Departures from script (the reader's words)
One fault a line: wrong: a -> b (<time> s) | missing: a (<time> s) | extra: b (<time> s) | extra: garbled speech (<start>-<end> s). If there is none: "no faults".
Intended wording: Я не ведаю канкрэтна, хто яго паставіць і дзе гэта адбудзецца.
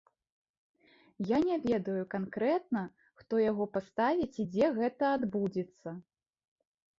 no faults